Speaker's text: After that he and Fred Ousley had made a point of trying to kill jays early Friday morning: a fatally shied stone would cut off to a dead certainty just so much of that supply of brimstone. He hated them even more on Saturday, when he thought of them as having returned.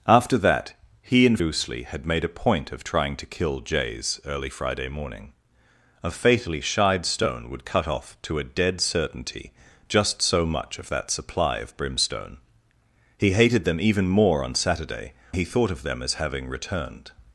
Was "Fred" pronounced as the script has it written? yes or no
no